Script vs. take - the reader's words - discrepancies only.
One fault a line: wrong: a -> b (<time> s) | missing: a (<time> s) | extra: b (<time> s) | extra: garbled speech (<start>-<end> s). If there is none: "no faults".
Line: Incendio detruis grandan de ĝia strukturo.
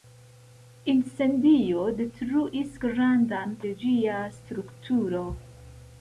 no faults